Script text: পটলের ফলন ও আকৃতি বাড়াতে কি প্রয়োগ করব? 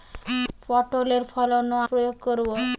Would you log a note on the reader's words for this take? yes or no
yes